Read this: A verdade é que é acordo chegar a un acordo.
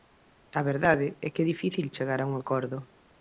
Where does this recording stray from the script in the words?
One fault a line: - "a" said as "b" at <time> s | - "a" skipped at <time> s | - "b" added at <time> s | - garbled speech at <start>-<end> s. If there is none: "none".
- "acordo" said as "difícil" at 1.5 s